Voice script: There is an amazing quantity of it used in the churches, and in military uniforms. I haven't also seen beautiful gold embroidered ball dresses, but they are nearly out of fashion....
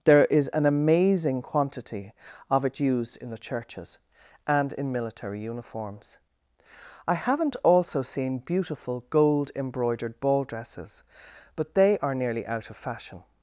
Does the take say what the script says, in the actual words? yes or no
yes